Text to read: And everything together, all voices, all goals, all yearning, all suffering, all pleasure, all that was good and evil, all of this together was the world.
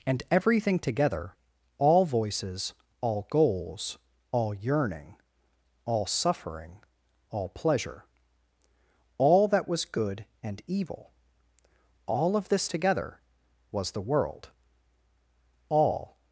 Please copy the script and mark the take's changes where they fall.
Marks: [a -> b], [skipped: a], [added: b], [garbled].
And everything together, all voices, all goals, all yearning, all suffering, all pleasure, all that was good and evil, all of this together was the world. [added: All]